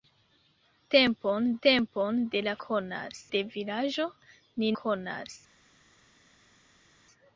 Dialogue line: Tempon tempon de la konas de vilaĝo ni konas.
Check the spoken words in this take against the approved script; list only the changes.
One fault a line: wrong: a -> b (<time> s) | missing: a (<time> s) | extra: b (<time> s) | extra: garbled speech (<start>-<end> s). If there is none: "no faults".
no faults